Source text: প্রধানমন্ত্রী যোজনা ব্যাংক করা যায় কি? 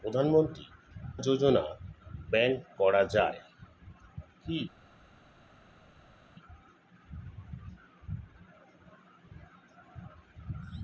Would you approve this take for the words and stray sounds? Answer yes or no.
yes